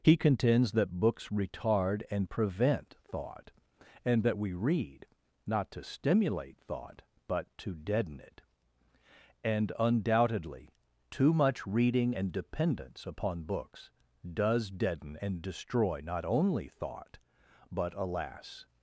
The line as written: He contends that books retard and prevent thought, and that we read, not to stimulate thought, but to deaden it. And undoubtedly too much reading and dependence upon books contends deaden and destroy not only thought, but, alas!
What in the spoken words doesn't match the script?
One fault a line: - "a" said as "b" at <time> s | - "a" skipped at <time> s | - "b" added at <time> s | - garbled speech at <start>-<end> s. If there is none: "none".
- "contends" said as "does" at 14.3 s